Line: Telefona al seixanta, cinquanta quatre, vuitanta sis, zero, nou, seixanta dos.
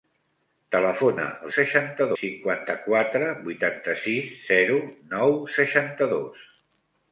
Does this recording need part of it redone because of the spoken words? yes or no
no